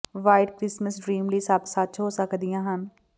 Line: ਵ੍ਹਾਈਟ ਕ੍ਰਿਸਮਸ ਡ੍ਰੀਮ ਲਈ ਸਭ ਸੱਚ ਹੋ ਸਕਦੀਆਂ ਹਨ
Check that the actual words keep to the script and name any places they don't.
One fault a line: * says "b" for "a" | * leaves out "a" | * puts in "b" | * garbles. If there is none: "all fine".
all fine